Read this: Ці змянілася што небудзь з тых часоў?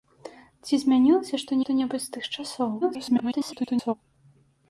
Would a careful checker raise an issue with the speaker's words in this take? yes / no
yes